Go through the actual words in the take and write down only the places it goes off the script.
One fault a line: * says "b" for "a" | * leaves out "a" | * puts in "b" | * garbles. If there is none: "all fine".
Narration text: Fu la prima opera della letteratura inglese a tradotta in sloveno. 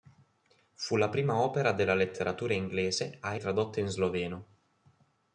all fine